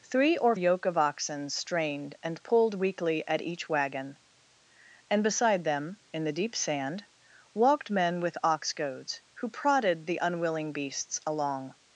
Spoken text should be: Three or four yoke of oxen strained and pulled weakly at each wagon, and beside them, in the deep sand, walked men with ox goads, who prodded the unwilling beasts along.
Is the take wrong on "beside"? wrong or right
right